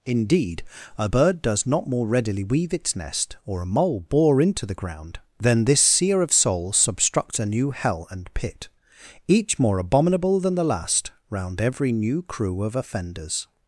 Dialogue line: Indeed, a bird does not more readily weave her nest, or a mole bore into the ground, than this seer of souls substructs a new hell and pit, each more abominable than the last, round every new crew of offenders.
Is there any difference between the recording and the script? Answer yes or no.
yes